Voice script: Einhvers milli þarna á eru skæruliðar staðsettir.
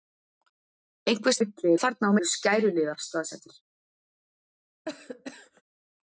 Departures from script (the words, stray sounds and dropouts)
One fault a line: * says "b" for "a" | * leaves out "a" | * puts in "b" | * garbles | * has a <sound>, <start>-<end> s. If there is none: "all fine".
* has a cough, 4.9-5.6 s